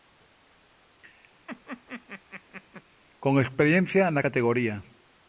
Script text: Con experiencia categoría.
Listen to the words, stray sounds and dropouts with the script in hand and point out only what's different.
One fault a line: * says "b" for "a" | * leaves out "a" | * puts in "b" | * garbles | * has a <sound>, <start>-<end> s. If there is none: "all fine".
* has a laugh, 1.5-2.8 s
* puts in "na"